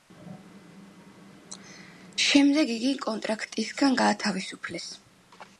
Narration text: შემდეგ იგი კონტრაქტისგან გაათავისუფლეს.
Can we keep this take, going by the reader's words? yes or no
yes